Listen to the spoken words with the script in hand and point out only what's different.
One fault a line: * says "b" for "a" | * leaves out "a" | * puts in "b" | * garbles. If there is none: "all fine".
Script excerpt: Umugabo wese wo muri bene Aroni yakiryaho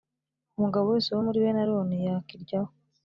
all fine